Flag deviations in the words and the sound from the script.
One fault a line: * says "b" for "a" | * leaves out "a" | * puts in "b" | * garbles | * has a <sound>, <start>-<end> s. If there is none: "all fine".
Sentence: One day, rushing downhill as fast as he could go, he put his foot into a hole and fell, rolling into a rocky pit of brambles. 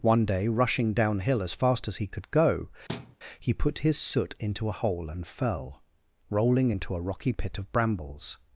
* has a thud, 2.9-3.2 s
* says "soot" for "foot"